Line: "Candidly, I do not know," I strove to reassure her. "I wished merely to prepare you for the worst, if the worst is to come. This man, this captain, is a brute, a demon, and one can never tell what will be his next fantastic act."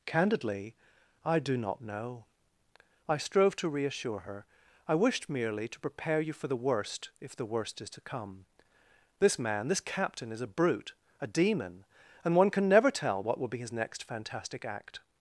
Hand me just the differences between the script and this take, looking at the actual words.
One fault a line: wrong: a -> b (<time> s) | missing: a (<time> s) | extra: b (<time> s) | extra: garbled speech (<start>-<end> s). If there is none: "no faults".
no faults